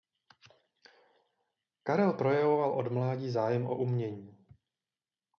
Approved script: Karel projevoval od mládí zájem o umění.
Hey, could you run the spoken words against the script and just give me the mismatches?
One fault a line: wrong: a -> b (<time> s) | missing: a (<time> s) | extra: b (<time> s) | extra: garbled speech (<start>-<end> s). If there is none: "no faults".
no faults